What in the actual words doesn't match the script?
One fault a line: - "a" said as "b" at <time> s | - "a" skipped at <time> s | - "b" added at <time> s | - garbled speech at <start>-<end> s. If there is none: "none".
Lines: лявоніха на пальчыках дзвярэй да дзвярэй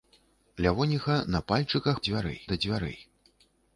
none